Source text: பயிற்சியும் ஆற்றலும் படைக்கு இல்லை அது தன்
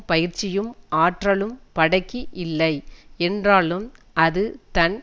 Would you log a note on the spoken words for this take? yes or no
yes